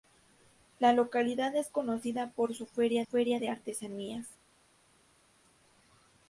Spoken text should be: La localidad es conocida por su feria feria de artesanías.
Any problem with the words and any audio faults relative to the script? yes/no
no